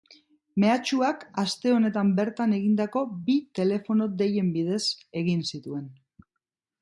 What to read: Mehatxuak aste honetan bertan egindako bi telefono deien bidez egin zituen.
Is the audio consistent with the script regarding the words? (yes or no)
yes